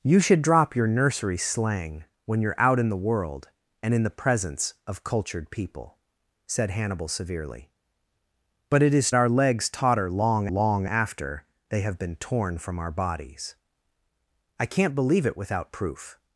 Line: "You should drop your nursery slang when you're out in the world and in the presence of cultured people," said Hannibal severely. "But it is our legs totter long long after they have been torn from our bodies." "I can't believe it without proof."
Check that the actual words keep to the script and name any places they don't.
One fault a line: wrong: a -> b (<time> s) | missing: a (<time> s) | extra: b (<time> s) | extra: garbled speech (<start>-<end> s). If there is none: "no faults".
no faults